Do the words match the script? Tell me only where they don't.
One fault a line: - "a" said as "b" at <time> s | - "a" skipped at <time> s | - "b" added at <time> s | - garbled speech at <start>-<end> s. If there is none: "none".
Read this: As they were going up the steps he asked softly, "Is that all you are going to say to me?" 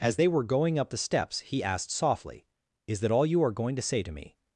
none